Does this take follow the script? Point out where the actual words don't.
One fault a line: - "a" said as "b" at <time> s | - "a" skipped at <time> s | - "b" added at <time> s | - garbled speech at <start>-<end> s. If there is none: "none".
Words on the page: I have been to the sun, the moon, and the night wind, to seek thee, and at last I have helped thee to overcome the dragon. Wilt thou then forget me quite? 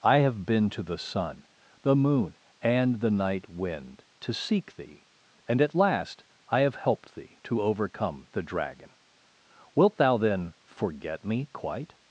none